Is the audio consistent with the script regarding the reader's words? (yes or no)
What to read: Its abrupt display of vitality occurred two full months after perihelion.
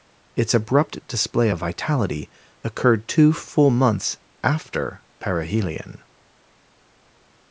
yes